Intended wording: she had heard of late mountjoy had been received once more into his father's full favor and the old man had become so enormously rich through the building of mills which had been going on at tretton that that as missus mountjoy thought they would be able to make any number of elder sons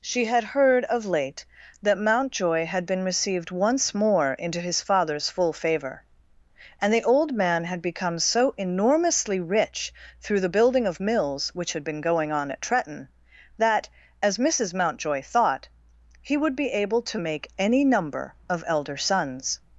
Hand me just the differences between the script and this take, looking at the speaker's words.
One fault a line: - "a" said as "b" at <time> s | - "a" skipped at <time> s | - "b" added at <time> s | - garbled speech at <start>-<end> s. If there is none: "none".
- "that" added at 1.8 s
- "that" skipped at 13.9 s
- "they" said as "he" at 16.2 s